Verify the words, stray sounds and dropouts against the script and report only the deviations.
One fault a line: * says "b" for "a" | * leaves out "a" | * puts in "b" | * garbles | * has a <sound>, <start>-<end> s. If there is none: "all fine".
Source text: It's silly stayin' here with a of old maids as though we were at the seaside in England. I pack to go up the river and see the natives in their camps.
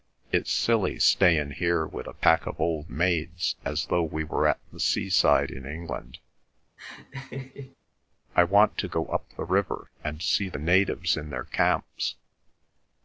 * puts in "pack"
* has a laugh, 6.8-7.8 s
* says "want" for "pack"